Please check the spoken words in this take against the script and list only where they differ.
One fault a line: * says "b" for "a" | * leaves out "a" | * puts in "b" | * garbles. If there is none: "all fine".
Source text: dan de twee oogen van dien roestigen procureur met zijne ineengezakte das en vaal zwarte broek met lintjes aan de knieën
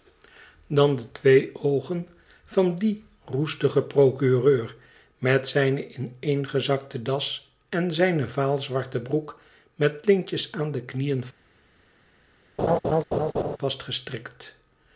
* puts in "zijne"